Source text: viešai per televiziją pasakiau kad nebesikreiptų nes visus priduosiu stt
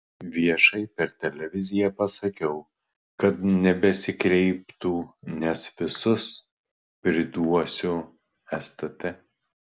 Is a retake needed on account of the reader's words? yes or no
no